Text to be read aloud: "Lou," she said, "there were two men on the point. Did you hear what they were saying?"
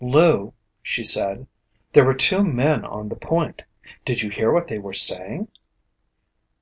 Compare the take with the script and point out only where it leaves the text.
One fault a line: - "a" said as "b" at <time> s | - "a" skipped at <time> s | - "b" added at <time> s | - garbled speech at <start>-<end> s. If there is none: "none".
none